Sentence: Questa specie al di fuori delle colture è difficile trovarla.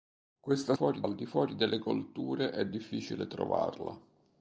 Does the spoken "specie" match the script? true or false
false